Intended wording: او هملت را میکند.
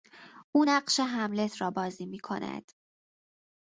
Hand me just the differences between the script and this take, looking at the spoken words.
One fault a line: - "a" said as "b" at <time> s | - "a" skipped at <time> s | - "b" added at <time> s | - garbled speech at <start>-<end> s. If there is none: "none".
- "نقش" added at 0.7 s
- "بازی" added at 1.7 s